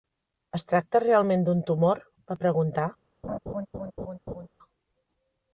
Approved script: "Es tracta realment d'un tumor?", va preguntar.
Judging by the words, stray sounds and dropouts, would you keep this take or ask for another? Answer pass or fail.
fail